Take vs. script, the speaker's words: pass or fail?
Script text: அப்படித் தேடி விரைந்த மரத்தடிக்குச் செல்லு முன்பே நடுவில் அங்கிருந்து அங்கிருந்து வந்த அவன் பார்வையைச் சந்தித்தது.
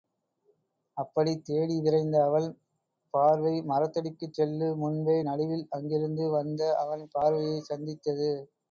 fail